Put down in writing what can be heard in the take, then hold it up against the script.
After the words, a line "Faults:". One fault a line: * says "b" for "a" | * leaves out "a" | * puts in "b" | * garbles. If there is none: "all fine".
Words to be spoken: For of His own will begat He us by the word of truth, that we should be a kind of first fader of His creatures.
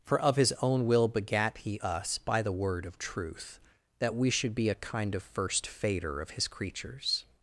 For of His own will begat He us by the word of truth, that we should be a kind of first fader of His creatures.
Faults:
all fine